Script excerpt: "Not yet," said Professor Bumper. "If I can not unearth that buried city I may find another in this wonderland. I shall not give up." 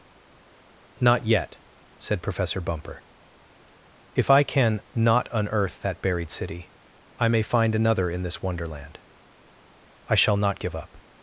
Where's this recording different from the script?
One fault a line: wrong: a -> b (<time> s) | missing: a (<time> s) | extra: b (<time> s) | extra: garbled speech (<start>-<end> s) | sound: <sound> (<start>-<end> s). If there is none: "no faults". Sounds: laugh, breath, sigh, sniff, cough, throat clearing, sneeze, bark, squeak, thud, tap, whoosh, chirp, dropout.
no faults